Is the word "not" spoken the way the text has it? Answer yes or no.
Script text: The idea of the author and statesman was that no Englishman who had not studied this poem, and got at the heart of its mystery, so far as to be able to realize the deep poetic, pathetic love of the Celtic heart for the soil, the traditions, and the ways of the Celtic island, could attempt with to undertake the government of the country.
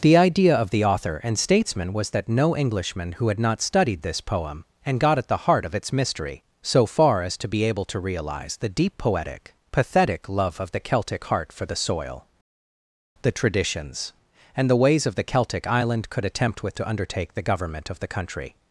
yes